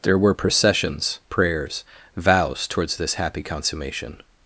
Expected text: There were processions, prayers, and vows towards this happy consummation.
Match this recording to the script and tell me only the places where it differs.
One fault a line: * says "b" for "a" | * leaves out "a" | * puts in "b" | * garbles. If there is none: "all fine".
* leaves out "and"